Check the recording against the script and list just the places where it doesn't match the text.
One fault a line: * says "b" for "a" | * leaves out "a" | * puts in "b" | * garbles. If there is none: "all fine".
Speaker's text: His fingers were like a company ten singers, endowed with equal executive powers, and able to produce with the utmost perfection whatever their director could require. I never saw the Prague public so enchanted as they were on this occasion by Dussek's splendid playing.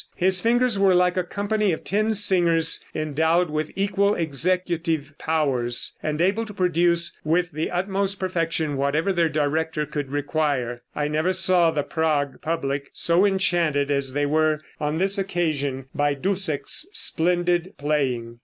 * puts in "of"